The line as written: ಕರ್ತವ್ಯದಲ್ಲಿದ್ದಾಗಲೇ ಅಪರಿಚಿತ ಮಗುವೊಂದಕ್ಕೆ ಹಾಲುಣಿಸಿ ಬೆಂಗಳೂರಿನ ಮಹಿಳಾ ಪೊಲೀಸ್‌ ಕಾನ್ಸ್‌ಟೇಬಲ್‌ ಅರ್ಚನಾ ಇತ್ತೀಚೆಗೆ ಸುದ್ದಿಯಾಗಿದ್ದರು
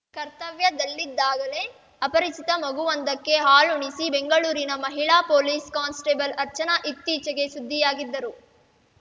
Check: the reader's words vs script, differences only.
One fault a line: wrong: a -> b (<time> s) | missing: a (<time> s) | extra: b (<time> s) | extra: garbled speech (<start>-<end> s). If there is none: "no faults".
no faults